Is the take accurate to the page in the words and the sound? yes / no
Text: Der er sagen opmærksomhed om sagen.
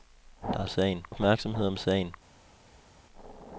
yes